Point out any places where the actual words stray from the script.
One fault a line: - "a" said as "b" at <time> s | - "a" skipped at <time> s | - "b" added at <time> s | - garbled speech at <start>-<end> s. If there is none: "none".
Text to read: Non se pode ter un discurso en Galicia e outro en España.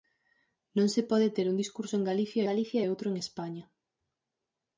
- "Galicia" added at 2.5 s